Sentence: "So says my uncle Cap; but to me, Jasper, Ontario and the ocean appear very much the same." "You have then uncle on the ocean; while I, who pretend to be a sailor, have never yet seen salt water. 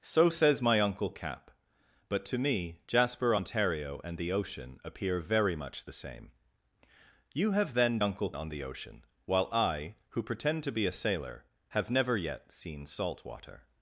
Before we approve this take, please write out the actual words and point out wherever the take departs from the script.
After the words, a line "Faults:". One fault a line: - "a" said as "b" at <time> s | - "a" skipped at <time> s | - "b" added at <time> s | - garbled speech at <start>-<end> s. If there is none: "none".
"So says my uncle Cap; but to me, Jasper, Ontario and the ocean appear very much the same." "You have then uncle on the ocean; while I, who pretend to be a sailor, have never yet seen salt water.
Faults:
none